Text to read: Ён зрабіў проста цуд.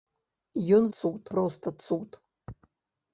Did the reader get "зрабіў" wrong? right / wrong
wrong